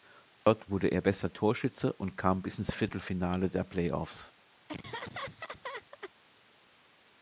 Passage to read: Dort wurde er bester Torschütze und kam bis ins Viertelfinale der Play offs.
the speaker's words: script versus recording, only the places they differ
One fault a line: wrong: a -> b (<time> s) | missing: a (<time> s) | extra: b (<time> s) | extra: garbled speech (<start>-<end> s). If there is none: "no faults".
no faults